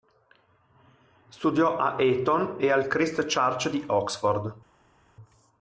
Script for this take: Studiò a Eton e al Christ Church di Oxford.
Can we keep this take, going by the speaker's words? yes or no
yes